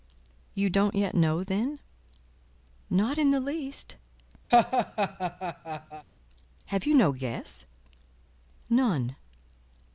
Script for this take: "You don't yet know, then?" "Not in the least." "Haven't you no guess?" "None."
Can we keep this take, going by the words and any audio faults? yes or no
no